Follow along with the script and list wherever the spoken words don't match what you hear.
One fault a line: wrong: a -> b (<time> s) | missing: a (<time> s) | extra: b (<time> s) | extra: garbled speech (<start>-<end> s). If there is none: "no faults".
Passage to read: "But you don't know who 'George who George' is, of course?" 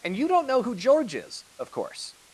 wrong: But -> And (0.0 s)
missing: who George (1.2 s)